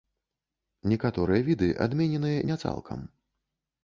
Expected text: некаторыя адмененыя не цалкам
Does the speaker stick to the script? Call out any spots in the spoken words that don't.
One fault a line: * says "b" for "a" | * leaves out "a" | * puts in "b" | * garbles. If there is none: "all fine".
* puts in "віды"